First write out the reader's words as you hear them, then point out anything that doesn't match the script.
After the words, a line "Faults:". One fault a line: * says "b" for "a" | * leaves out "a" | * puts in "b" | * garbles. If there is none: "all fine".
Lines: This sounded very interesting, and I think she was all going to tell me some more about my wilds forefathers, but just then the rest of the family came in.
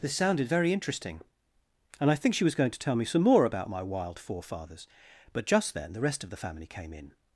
This sounded very interesting, and I think she was going to tell me some more about my wild forefathers, but just then the rest of the family came in.
Faults:
* leaves out "all"
* says "wild" for "wilds"